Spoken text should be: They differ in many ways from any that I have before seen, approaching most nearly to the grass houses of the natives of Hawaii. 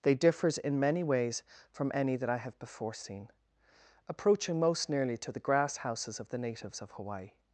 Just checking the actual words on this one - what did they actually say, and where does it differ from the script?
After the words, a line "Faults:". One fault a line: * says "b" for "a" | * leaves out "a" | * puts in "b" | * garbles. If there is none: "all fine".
They differs in many ways from any that I have before seen, approaching most nearly to the grass houses of the natives of Hawaii.
Faults:
* says "differs" for "differ"